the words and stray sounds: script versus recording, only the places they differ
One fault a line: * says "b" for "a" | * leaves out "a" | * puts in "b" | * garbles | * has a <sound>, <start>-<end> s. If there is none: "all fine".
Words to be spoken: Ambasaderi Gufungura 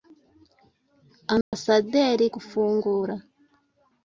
* has a dropout, 1.4-1.5 s